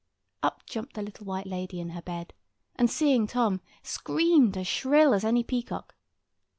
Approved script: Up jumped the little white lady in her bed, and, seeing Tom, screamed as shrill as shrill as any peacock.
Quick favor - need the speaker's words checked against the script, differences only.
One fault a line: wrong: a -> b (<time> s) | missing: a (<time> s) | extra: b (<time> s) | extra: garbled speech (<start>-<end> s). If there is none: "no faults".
missing: shrill as (5.3 s)